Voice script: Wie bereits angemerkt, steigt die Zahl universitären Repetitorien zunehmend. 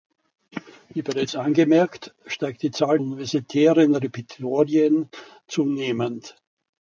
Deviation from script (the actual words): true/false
false